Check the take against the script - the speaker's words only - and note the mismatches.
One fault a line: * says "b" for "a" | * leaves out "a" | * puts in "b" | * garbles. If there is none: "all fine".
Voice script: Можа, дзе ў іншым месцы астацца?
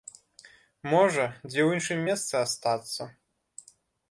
all fine